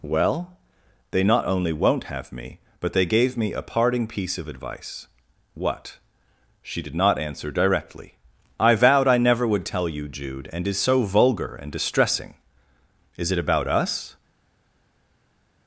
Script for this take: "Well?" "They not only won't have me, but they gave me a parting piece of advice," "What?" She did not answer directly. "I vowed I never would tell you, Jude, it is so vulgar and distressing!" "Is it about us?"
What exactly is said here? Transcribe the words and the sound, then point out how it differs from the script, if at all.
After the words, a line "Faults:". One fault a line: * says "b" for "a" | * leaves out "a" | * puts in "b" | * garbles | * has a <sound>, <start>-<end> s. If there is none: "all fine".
"Well?" "They not only won't have me, but they gave me a parting piece of advice," "What?" She did not answer directly. "I vowed I never would tell you, Jude, and is so vulgar and distressing!" "Is it about us?"
Faults:
* says "and" for "it"